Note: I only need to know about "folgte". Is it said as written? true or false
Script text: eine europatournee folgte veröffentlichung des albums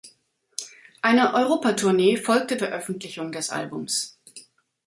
true